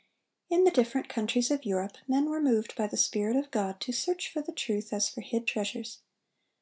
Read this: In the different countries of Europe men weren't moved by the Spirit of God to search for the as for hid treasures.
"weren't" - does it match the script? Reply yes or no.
no